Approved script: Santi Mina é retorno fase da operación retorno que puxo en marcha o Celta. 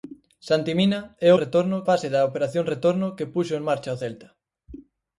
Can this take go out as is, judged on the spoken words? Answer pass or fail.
pass